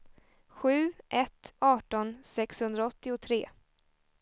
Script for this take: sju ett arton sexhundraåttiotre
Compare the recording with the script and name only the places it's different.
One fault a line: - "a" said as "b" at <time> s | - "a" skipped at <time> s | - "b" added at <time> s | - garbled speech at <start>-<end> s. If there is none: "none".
none